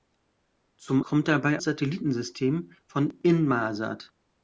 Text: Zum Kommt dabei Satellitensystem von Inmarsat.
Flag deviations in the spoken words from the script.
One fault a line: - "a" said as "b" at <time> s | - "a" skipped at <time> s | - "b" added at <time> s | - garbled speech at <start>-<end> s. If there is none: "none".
none